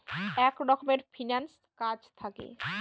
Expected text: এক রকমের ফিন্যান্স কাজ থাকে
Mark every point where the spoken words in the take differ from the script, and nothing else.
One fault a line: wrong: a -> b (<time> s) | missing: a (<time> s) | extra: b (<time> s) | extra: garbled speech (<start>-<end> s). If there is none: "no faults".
no faults